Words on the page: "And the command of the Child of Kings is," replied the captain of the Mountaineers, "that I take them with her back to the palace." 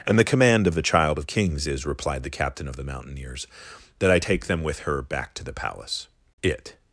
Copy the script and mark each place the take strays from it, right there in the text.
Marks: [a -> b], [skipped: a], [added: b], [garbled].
"And the command of the Child of Kings is," replied the captain of the Mountaineers, "that I take them with her back to the palace." [added: It]